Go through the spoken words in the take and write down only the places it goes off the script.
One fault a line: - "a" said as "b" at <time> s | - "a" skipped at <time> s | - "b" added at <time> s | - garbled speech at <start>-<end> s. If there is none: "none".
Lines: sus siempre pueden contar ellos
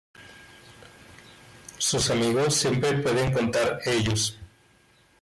- "amigos" added at 2.1 s